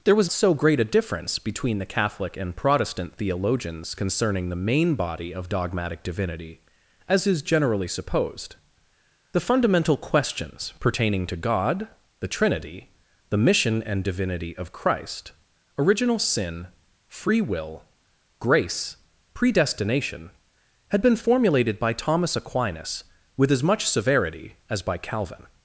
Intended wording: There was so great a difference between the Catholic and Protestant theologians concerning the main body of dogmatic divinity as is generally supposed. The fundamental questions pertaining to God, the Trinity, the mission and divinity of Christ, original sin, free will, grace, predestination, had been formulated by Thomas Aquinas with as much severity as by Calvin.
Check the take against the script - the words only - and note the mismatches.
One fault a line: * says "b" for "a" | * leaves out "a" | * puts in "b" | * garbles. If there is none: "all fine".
all fine